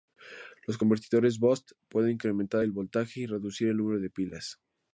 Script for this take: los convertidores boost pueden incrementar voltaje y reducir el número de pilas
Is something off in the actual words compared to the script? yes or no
yes